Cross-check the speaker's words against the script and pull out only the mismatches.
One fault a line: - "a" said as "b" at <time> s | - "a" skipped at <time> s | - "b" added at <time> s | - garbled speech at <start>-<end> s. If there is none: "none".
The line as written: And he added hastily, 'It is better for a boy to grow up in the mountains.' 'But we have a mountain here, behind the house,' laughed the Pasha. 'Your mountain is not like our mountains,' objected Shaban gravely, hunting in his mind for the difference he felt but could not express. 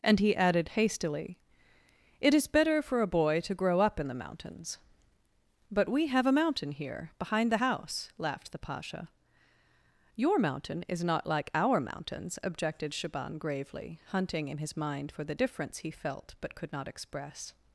none